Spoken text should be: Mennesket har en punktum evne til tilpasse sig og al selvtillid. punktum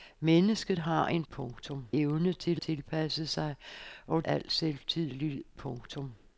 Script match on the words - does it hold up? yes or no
yes